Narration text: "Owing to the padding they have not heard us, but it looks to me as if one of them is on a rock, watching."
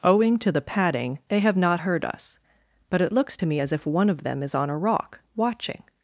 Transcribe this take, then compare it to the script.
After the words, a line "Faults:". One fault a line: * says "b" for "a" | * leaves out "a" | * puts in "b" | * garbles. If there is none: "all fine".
"Owing to the padding they have not heard us, but it looks to me as if one of them is on a rock, watching."
Faults:
all fine